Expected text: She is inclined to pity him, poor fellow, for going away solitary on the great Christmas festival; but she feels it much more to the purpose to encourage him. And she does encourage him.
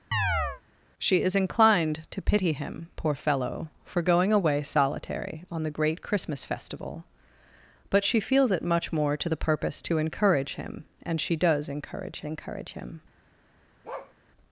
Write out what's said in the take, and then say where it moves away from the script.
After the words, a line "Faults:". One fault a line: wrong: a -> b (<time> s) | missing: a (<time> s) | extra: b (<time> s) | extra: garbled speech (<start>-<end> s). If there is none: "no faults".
She is inclined to pity him, poor fellow, for going away solitary on the great Christmas festival; but she feels it much more to the purpose to encourage him. And she does encourage encourage him.
Faults:
extra: encourage (12.2 s)